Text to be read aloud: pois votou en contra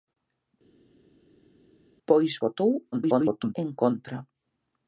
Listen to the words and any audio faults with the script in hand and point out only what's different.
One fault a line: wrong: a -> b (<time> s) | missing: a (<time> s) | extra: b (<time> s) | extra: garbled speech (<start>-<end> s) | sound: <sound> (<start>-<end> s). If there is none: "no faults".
extra: garbled speech (2.9-3.5 s)